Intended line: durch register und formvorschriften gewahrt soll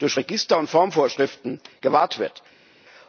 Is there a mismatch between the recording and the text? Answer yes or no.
yes